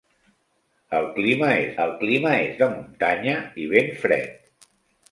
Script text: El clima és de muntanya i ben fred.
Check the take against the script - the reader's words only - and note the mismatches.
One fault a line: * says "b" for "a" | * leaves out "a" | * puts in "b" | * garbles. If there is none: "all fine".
* puts in "el clima és"